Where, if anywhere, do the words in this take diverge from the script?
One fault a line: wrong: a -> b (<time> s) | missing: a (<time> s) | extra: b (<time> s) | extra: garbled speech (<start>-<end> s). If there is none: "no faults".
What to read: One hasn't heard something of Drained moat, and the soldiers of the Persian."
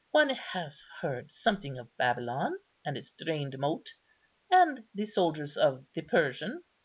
wrong: hasn't -> has (0.3 s)
extra: Babylon and its (1.9 s)